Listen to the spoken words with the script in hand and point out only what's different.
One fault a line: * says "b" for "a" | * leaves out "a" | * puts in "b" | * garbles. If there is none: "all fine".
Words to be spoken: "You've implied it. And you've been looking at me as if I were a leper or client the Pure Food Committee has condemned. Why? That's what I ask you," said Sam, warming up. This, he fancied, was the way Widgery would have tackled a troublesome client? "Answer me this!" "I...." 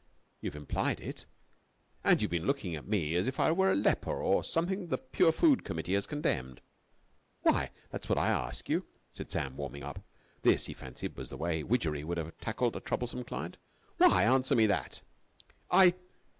* says "something" for "client"
* puts in "Why"
* says "that" for "this"